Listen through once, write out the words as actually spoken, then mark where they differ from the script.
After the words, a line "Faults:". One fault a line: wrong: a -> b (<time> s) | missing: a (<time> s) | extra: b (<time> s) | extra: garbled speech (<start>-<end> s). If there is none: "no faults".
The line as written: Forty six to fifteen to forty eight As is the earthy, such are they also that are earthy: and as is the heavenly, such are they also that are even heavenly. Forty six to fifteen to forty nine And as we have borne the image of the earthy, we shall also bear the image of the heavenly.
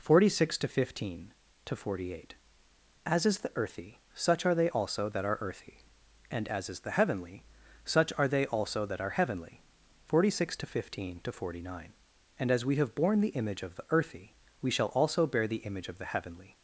Forty six to fifteen to forty eight As is the earthy, such are they also that are earthy: and as is the heavenly, such are they also that are heavenly. Forty six to fifteen to forty nine And as we have borne the image of the earthy, we shall also bear the image of the heavenly.
Faults:
missing: even (9.2 s)